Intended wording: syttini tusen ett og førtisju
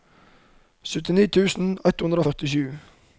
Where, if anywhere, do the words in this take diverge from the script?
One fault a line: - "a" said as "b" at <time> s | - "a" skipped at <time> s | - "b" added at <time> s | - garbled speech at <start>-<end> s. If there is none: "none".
- "hundre" added at 2.0 s